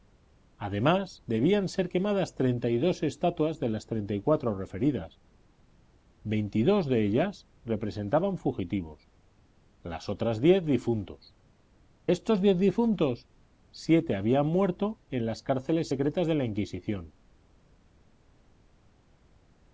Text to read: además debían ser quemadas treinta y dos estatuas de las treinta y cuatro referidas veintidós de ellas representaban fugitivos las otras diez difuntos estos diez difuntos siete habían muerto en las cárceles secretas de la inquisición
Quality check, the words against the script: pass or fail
pass